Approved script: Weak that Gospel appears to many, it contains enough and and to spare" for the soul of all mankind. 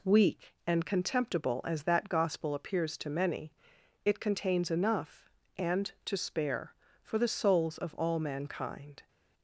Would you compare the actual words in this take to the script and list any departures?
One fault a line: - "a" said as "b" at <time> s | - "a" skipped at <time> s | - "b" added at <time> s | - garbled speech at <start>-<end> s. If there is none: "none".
- "and contemptible as" added at 0.7 s
- "and" skipped at 5.9 s
- "soul" said as "souls" at 7.3 s